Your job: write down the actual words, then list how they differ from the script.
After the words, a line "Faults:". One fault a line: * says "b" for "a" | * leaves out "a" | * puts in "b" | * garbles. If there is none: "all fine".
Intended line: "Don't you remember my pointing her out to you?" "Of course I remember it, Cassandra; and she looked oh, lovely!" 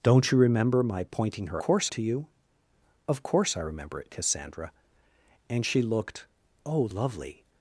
"Don't you remember my pointing her course to you?" "Of course I remember it, Cassandra; and she looked oh, lovely!"
Faults:
* says "course" for "out"